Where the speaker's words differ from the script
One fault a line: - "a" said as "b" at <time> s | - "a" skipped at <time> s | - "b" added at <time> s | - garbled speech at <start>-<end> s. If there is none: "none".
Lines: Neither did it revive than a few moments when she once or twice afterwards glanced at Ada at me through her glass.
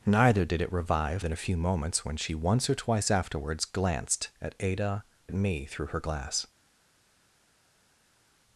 none